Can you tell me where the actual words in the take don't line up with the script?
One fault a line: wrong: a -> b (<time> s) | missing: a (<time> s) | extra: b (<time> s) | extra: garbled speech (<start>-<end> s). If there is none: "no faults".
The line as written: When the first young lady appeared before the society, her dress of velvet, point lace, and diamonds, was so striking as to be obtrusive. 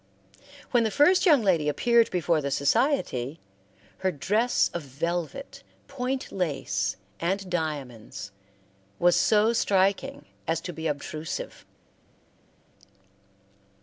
no faults